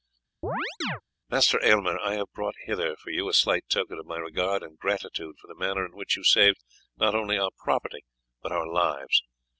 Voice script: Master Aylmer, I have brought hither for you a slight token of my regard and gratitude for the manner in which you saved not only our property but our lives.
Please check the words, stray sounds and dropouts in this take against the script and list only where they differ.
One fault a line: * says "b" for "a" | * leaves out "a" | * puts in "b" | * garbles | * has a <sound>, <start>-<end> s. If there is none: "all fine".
* has a chirp, 0.4-1.0 s